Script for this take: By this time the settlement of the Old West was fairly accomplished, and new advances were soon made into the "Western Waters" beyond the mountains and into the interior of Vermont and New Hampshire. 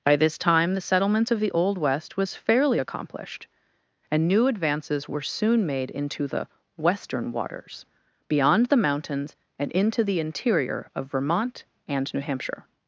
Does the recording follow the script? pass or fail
pass